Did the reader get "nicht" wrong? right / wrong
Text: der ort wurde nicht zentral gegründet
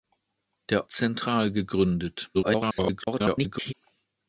wrong